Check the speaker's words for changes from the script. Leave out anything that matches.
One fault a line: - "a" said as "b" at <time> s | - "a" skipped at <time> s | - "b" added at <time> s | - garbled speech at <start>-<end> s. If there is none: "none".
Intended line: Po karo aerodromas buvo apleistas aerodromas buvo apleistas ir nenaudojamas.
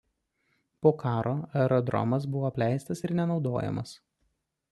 - "aerodromas buvo apleistas" skipped at 3.0 s